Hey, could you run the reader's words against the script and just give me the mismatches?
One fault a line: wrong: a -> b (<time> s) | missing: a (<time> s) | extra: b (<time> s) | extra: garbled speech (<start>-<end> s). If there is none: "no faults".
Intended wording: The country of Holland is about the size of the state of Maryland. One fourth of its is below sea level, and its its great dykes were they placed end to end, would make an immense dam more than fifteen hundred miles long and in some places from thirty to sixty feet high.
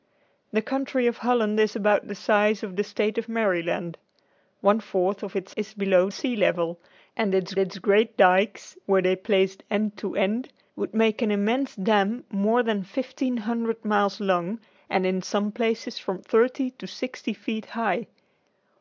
no faults